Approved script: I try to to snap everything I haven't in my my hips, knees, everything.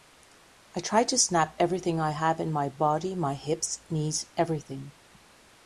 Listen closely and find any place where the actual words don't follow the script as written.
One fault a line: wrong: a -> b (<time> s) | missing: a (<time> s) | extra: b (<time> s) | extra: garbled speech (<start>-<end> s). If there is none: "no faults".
missing: to (1.2 s)
wrong: haven't -> have (2.1 s)
extra: body (2.7 s)